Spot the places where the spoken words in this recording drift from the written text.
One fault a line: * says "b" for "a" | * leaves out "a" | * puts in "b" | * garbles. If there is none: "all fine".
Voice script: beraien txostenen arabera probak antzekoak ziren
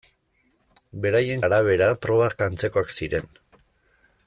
* leaves out "txostenen"